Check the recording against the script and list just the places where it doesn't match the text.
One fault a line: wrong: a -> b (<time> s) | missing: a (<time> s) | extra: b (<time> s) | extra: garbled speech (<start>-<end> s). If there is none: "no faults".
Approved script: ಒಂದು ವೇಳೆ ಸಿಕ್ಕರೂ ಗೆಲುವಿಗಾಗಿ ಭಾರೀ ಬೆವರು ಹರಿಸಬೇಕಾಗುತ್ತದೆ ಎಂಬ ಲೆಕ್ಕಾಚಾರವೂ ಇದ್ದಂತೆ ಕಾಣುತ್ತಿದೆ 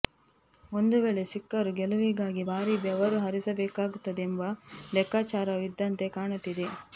no faults